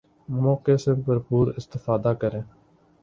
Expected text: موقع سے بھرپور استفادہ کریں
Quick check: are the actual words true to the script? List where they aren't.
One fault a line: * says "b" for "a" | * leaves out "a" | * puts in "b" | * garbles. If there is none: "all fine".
all fine